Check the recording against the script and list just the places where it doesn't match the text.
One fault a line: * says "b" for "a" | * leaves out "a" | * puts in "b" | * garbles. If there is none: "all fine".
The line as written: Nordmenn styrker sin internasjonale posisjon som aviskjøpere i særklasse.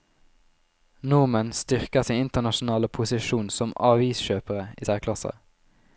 all fine